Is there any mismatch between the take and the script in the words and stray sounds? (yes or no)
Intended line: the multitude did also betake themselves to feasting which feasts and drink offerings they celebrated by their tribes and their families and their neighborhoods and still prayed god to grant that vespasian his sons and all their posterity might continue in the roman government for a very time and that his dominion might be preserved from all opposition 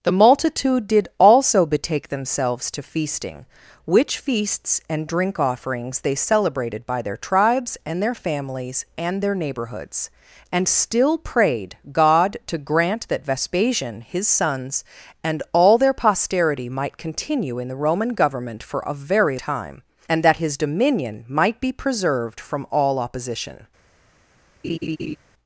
yes